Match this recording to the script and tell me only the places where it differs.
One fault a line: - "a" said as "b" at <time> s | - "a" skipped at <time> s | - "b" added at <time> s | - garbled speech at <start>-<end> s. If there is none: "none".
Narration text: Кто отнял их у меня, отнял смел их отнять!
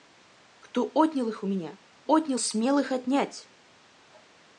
none